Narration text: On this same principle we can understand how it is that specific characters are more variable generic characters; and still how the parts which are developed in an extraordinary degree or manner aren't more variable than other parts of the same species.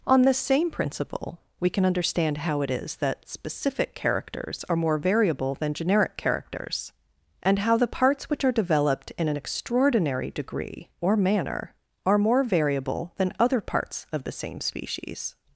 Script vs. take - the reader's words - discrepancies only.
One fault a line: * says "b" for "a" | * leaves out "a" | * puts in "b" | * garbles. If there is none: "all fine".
* puts in "than"
* leaves out "still"
* says "are" for "aren't"